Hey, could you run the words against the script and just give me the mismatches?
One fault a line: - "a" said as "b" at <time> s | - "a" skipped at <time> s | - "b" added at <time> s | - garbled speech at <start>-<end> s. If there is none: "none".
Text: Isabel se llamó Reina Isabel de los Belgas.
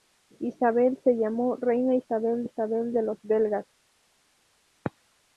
- "Isabel" added at 2.4 s